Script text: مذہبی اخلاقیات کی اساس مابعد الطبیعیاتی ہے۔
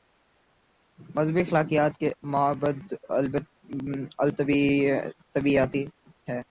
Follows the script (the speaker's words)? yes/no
no